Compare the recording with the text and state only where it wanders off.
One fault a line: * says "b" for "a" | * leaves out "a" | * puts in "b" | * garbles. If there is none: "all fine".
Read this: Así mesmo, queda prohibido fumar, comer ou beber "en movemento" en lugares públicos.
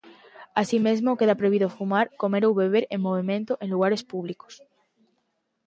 all fine